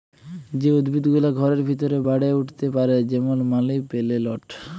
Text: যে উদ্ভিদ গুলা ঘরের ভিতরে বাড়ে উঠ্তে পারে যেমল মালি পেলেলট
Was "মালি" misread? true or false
false